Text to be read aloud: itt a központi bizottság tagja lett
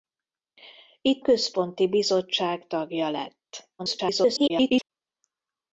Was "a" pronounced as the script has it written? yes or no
no